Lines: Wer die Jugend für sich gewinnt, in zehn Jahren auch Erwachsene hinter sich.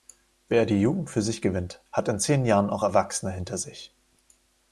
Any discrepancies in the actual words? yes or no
yes